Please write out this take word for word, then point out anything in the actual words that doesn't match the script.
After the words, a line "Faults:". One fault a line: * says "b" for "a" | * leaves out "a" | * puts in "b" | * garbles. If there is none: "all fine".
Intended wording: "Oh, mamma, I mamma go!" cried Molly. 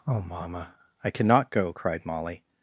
"Oh, mamma, I cannot go!" cried Molly.
Faults:
* says "cannot" for "mamma"